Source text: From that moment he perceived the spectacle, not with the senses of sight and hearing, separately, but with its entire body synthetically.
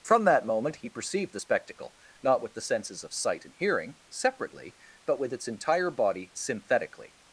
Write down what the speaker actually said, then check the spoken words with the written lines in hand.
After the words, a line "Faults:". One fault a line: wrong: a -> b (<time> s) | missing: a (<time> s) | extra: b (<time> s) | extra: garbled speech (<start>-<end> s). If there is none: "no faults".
From that moment he perceived the spectacle, not with the senses of sight and hearing, separately, but with its entire body synthetically.
Faults:
no faults